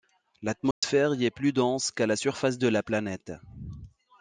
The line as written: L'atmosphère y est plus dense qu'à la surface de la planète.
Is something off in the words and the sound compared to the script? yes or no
yes